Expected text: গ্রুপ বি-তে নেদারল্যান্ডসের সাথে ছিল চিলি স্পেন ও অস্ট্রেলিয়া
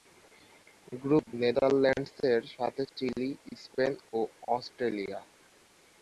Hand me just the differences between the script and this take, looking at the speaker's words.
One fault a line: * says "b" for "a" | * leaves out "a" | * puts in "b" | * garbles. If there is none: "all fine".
* leaves out "বি-তে"
* leaves out "ছিল"